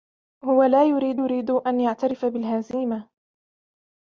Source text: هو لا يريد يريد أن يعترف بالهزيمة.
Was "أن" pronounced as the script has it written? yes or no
yes